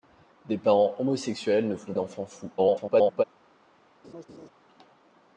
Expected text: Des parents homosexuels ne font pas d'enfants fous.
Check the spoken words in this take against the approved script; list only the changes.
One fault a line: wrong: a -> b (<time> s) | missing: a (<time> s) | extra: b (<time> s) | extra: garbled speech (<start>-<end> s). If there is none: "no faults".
missing: pas (1.9 s)
extra: garbled speech (2.6-3.2 s)